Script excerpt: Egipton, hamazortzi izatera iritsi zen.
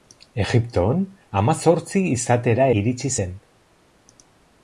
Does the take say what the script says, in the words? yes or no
yes